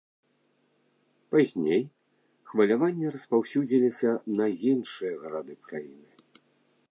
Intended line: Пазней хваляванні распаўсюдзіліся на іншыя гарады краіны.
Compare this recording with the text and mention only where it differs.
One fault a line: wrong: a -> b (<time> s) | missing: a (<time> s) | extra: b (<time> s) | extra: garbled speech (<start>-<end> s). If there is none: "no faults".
no faults